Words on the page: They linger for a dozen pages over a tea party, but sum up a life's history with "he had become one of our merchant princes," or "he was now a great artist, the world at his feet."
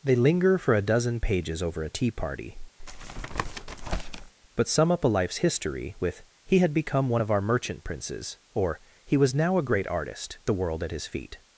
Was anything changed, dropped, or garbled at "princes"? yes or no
no